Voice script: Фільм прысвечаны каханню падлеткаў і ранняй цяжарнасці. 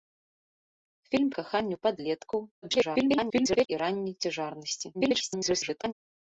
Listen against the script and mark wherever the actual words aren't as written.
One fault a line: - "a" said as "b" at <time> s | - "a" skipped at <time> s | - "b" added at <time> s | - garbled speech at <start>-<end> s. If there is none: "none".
- "прысвечаны" skipped at 1.3 s
- garbled speech at 2.6-3.7 s
- garbled speech at 4.9-5.9 s